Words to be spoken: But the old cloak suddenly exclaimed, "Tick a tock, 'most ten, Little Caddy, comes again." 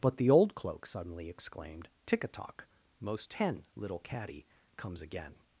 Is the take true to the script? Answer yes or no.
yes